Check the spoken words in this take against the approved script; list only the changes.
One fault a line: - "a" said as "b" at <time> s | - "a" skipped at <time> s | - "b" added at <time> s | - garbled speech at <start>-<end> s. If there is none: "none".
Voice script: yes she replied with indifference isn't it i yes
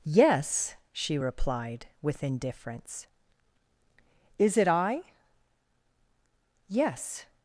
- "isn't" said as "is" at 4.4 s